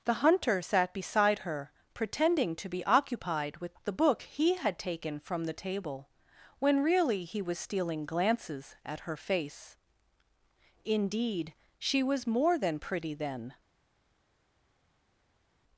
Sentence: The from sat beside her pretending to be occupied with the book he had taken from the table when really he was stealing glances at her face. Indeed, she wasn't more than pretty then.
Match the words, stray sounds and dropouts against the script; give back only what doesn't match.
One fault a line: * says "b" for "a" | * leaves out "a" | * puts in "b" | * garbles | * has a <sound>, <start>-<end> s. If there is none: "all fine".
* says "hunter" for "from"
* says "was" for "wasn't"